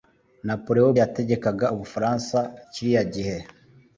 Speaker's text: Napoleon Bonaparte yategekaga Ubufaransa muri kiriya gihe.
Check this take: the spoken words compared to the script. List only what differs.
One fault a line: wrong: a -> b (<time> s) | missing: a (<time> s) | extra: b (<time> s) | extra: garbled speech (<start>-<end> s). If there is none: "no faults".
missing: Bonaparte (0.9 s)
missing: muri (2.4 s)